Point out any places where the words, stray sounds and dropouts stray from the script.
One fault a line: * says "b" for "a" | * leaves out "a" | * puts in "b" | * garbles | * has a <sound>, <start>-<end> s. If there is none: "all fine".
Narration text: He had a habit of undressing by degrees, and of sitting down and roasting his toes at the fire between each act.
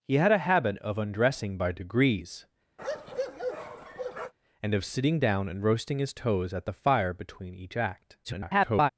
* has a bark, 2.8-4.3 s
* garbles